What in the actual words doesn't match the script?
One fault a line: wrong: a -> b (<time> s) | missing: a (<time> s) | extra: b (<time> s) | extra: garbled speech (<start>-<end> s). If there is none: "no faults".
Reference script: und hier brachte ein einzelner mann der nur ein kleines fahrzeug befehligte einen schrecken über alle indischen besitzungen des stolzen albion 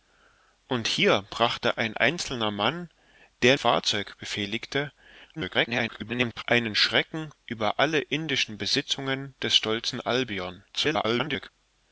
missing: nur ein kleines (3.5 s)
extra: garbled speech (5.4-6.4 s)
extra: garbled speech (10.7-11.5 s)